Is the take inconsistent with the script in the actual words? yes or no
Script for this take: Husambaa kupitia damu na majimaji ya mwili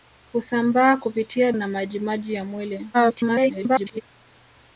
yes